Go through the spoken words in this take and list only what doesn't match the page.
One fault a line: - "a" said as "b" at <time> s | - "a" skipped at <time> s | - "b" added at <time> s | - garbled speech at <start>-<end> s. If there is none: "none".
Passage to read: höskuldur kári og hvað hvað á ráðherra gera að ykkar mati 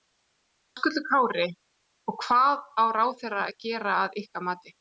- "hvað" skipped at 2.6 s
- "að" added at 3.5 s